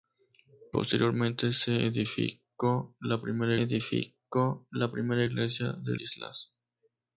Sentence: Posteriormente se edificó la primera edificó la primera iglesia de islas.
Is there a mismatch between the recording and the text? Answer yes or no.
no